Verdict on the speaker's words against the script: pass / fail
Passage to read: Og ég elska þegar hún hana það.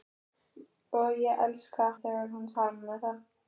pass